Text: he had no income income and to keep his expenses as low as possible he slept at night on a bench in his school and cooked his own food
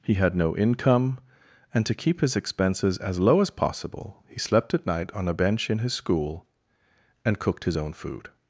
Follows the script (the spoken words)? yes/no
no